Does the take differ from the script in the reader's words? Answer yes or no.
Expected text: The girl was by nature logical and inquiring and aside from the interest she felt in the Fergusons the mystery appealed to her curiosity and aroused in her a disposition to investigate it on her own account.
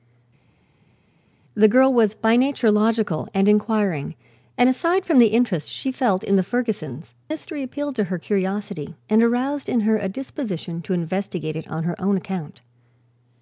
yes